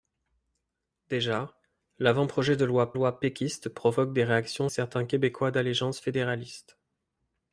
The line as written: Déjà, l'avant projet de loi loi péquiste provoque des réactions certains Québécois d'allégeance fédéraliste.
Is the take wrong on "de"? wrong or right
right